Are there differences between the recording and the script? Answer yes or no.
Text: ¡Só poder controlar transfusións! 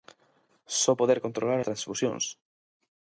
no